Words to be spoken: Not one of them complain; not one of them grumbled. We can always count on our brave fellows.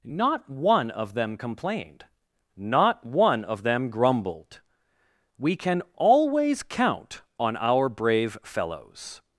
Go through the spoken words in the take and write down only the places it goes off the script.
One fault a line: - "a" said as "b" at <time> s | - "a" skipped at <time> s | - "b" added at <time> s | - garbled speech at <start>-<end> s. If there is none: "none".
- "complain" said as "complained" at 1.4 s